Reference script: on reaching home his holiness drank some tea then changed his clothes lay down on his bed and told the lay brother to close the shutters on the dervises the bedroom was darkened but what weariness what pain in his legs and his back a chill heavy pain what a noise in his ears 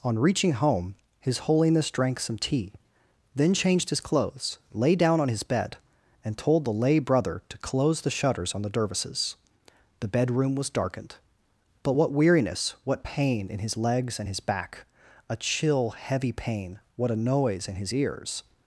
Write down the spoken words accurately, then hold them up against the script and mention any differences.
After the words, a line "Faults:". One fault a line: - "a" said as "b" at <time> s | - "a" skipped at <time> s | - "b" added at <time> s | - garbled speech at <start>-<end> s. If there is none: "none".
on reaching home his holiness drank some tea then changed his clothes lay down on his bed and told the lay brother to close the shutters on the dervises the bedroom was darkened but what weariness what pain in his legs and his back a chill heavy pain what a noise in his ears
Faults:
none